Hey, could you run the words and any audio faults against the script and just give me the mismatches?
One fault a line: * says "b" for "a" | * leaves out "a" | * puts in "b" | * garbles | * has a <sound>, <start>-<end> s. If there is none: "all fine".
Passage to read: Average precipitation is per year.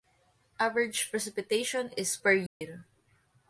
* has a dropout, 2.5-2.6 s